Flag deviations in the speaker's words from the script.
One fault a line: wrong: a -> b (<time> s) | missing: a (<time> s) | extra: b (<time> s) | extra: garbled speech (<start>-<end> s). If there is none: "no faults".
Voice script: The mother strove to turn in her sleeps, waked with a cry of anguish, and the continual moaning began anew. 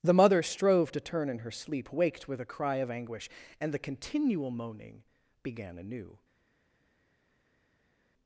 wrong: sleeps -> sleep (1.5 s)